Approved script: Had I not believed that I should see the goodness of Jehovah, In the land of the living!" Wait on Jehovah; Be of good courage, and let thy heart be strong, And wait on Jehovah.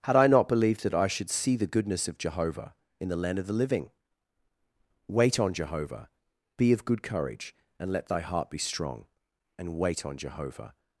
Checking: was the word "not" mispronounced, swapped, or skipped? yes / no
no